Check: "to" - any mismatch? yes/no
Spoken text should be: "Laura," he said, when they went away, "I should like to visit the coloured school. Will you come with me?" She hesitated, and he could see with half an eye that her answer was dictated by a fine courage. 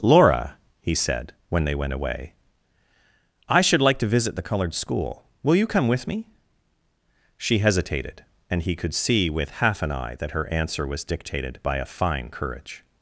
no